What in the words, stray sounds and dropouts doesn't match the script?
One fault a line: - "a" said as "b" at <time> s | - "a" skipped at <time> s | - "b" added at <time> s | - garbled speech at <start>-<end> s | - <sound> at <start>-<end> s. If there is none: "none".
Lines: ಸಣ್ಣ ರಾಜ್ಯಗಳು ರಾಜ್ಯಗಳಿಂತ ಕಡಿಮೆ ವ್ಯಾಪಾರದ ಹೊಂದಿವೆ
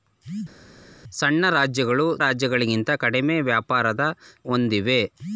none